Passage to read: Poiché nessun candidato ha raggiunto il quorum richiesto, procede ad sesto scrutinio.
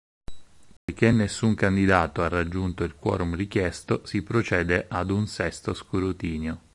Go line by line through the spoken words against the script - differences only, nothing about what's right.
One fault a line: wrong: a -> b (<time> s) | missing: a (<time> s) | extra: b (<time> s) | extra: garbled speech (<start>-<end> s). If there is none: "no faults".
extra: si (4.1 s)
extra: un (5.1 s)